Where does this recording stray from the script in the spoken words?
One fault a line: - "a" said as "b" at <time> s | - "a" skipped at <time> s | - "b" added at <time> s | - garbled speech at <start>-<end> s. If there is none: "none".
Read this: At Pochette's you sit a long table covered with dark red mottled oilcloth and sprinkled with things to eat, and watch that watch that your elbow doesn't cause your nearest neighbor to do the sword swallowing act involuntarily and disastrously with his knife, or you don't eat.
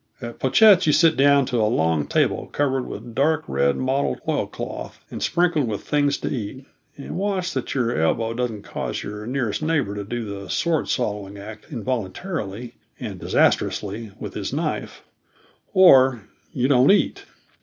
- "down to" added at 1.1 s
- "watch that" skipped at 7.8 s